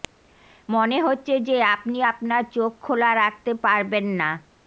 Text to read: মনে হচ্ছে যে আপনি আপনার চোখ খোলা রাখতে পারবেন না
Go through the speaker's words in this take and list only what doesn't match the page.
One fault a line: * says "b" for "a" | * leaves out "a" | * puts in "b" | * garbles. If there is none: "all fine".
all fine